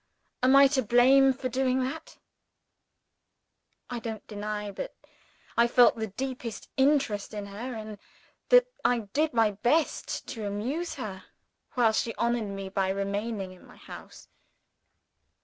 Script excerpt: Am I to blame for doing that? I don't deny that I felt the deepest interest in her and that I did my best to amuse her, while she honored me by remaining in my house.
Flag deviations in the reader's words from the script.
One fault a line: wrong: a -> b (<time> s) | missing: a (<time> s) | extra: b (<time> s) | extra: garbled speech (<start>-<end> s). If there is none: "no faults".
no faults